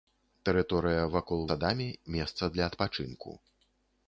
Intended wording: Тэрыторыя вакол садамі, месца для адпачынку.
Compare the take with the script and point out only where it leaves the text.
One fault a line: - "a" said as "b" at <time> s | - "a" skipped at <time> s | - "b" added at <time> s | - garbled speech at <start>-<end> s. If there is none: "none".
none